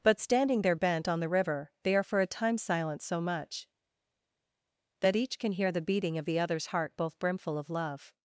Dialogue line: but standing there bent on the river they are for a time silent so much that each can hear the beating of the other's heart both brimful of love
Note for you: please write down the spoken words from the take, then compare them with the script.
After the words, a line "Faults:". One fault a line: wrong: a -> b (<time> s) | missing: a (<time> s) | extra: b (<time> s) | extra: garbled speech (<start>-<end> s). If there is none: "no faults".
but standing there bent on the river they are for a time silent so much that each can hear the beating of the other's heart both brimful of love
Faults:
no faults